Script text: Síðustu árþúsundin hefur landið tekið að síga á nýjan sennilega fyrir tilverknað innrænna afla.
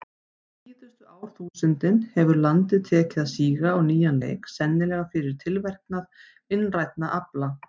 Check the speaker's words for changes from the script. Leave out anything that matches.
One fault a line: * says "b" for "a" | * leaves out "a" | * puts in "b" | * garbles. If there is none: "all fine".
* puts in "leik"